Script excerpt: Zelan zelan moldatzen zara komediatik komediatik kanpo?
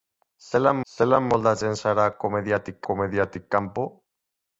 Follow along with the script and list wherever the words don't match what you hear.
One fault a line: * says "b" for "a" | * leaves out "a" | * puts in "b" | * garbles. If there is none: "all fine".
all fine